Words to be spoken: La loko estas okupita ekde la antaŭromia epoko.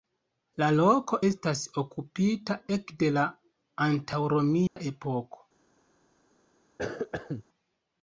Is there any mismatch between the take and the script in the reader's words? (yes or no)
no